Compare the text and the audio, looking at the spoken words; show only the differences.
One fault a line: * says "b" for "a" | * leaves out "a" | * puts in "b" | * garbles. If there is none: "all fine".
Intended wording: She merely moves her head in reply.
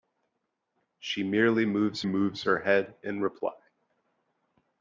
* puts in "moves"